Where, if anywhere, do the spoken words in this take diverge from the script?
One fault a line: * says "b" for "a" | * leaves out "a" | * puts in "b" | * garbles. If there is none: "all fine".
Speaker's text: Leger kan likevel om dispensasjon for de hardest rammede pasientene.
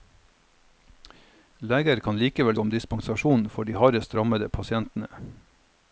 all fine